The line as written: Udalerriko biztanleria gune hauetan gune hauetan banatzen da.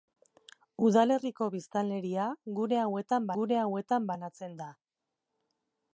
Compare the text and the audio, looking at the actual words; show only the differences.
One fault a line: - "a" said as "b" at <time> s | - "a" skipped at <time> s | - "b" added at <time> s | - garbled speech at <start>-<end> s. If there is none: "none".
none